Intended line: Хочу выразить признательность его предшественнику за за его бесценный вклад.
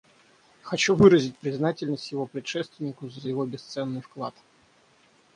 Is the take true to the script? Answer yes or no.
yes